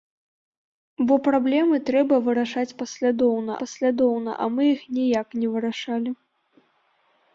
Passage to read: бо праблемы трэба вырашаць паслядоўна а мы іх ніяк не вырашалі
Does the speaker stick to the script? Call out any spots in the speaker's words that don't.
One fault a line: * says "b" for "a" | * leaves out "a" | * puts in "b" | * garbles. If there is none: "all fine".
* puts in "паслядоўна"